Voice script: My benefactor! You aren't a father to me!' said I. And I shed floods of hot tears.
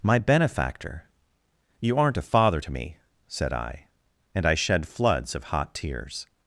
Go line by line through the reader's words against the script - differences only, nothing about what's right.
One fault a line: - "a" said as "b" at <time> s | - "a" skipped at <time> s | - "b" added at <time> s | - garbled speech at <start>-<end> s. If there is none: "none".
none